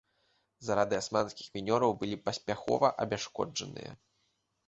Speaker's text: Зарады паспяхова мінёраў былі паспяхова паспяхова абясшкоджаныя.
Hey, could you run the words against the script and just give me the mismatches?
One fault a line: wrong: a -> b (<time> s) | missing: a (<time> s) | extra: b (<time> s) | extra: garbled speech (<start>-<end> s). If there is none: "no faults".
wrong: паспяхова -> асманскіх (1.0 s)
missing: паспяхова (2.9 s)